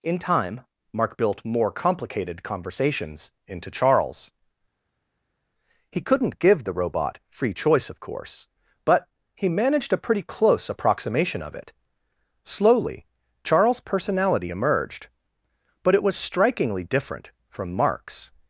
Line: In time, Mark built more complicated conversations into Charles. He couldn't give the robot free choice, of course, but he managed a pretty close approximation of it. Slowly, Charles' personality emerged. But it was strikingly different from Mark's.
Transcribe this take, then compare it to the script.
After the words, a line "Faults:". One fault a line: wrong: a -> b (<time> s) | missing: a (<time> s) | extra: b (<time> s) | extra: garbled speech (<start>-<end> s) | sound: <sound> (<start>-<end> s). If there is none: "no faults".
In time, Mark built more complicated conversations into Charles. He couldn't give the robot free choice, of course, but he managed a pretty close approximation of it. Slowly, Charles' personality emerged. But it was strikingly different from Mark's.
Faults:
no faults